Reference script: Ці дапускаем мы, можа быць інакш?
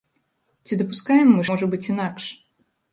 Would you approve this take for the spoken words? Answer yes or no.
yes